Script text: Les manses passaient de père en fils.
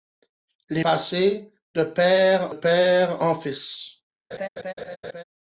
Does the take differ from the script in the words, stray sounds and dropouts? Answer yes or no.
yes